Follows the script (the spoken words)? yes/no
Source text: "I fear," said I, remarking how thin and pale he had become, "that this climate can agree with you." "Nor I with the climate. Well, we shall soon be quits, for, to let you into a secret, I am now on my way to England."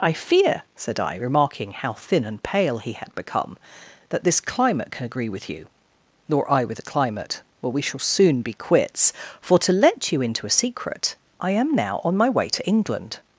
yes